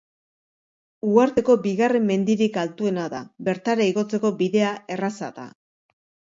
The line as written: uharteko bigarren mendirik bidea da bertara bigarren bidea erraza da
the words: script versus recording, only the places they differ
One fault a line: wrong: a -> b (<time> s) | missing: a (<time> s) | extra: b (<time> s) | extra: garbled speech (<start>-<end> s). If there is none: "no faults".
wrong: bidea -> altuena (2.6 s)
wrong: bigarren -> igotzeko (3.9 s)